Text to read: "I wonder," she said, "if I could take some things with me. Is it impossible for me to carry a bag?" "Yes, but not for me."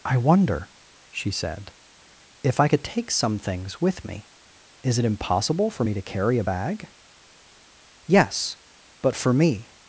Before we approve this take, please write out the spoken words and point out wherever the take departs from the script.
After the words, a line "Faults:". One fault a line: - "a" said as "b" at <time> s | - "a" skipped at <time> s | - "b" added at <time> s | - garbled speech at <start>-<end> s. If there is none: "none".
"I wonder," she said, "if I could take some things with me. Is it impossible for me to carry a bag?" "Yes, but for me."
Faults:
- "not" skipped at 9.1 s